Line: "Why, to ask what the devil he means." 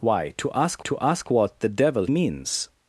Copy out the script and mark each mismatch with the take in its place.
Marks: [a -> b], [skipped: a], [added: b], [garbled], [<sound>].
"Why, to ask [added: to ask] what the devil [skipped: he] means."